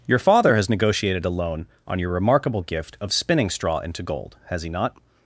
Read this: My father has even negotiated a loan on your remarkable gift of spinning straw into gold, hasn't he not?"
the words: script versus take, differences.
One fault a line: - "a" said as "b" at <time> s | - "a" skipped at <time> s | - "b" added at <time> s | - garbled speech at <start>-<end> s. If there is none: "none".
- "My" said as "Your" at 0.1 s
- "even" skipped at 0.7 s
- "hasn't" said as "has" at 4.5 s